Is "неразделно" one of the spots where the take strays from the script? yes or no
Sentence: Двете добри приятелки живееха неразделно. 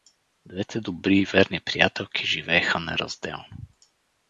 no